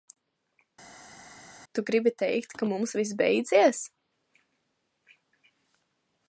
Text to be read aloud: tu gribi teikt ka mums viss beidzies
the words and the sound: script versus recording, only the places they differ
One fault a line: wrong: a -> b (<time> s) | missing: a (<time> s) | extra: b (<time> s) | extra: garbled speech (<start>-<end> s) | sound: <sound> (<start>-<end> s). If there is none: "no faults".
no faults